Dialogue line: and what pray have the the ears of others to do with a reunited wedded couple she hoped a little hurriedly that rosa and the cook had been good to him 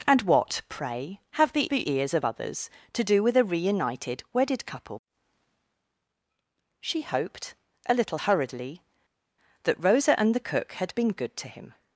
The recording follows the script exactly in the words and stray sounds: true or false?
true